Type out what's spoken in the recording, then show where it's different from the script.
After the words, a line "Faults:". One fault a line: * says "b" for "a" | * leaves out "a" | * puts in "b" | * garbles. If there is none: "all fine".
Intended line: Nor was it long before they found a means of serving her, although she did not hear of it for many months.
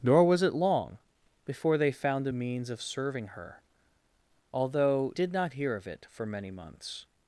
Nor was it long before they found a means of serving her, although did not hear of it for many months.
Faults:
* leaves out "she"